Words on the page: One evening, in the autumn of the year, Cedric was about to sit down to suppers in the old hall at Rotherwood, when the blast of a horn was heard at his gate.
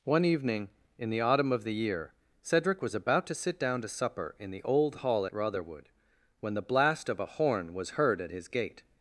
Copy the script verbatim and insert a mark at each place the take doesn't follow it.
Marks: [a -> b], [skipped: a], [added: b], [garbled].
One evening, in the autumn of the year, Cedric was about to sit down to [suppers -> supper] in the old hall at Rotherwood, when the blast of a horn was heard at his gate.